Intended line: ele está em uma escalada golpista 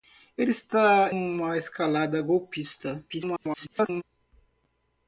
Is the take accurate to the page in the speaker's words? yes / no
no